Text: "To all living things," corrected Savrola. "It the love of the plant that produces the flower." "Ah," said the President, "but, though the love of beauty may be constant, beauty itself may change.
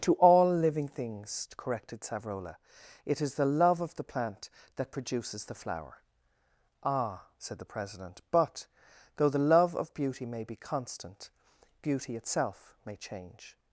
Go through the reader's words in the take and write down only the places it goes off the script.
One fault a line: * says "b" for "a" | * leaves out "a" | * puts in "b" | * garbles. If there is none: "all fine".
* puts in "is"